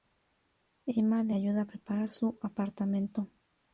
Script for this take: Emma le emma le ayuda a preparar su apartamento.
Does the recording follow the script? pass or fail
fail